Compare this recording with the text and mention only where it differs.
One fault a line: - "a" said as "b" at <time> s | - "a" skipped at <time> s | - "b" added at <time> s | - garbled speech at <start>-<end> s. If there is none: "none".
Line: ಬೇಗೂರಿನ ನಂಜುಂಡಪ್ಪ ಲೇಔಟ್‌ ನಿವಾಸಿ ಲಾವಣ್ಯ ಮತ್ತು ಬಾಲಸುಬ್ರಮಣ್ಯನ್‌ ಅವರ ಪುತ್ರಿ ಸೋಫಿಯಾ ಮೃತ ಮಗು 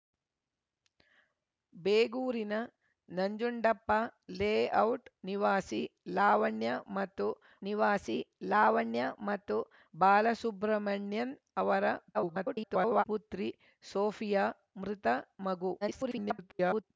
- "ನಿವಾಸಿ ಲಾವಣ್ಯ ಮತ್ತು" added at 7.6 s
- garbled speech at 12.1-13.0 s
- garbled speech at 15.8-16.8 s